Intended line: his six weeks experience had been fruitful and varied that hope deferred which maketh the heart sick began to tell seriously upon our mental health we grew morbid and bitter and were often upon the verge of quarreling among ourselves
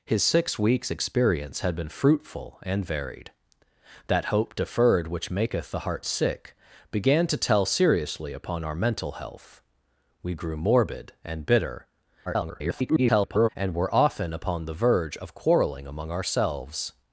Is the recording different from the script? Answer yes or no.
yes